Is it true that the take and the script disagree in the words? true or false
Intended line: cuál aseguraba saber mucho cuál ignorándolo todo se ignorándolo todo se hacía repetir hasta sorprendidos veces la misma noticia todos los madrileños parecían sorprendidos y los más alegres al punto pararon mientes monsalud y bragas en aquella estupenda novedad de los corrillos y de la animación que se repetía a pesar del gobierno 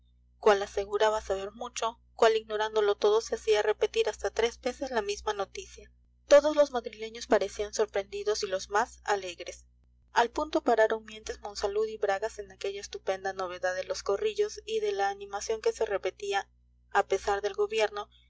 true